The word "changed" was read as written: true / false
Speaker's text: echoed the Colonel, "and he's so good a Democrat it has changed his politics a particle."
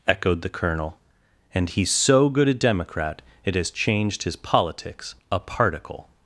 true